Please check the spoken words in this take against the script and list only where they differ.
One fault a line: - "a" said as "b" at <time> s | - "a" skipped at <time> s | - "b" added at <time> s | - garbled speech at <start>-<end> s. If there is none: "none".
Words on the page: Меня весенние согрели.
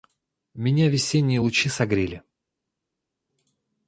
- "лучи" added at 1.4 s